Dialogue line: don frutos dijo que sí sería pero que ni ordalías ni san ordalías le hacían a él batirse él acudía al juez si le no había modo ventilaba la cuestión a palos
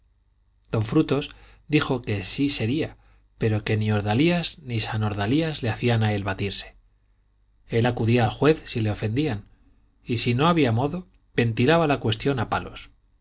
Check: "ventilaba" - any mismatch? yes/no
no